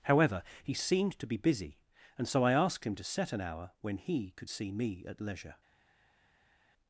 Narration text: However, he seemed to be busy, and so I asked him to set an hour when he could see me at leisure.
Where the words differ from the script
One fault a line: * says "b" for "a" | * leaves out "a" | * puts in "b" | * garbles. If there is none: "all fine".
all fine